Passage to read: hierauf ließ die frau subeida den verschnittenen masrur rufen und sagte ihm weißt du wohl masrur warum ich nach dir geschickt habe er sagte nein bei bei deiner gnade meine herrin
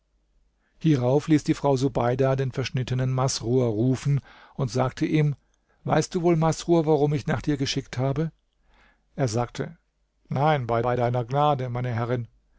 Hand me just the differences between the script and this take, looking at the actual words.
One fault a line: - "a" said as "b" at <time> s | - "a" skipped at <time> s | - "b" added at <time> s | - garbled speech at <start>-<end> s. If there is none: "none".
none